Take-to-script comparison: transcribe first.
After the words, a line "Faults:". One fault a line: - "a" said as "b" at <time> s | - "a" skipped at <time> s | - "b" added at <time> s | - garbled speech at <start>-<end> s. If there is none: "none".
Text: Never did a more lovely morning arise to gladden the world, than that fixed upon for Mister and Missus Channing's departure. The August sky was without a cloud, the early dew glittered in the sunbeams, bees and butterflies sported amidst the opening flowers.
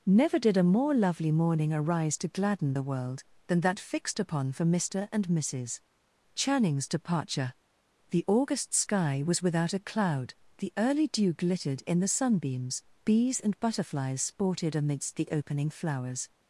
Never did a more lovely morning arise to gladden the world, than that fixed upon for Mister and Missus Channing's departure. The August sky was without a cloud, the early dew glittered in the sunbeams, bees and butterflies sported amidst the opening flowers.
Faults:
none